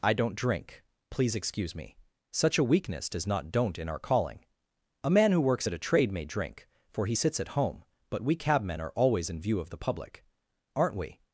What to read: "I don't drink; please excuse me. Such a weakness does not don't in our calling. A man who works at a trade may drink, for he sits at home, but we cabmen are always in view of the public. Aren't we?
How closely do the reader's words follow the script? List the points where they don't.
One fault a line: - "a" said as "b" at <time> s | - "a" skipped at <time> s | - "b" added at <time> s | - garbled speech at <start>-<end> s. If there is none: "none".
none